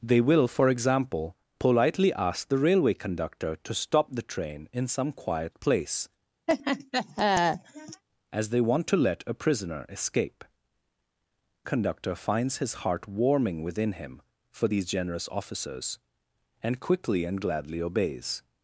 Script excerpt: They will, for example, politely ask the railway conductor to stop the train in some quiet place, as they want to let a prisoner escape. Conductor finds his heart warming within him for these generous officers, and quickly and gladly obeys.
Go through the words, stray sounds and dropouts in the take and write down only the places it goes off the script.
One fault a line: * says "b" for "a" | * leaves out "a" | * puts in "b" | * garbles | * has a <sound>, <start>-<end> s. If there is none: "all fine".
* has a laugh, 6.5-8.0 s